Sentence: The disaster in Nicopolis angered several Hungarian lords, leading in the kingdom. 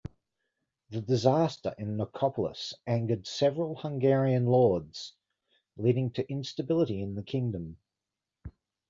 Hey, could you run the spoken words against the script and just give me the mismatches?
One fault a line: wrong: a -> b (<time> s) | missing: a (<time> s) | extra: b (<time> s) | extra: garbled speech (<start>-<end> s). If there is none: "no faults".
extra: to instability (6.1 s)